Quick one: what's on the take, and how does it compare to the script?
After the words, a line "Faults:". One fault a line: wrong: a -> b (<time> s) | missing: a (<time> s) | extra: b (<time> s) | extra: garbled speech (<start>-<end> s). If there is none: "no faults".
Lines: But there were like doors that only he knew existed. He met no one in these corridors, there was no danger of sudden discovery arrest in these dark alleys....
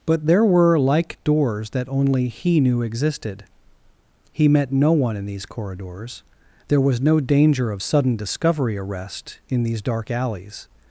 But there were like doors that only he knew existed. He met no one in these corridors, there was no danger of sudden discovery arrest in these dark alleys....
Faults:
no faults